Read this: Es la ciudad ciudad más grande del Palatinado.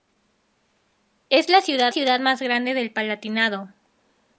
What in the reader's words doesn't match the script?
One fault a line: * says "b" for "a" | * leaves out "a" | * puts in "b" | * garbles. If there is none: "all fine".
all fine